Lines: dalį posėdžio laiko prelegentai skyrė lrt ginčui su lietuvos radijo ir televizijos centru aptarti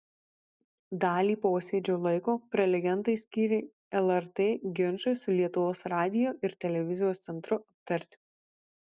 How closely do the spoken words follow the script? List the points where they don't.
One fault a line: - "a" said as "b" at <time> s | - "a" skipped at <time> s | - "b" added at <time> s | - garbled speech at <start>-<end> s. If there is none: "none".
none